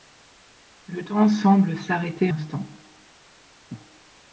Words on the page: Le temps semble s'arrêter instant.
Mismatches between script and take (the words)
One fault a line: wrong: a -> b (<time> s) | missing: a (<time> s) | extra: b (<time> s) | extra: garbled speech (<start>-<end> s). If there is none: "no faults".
no faults